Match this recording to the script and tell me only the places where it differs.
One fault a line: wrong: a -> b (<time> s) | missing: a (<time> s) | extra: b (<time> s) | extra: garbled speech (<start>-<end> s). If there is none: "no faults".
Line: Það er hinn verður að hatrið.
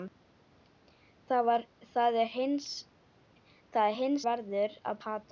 no faults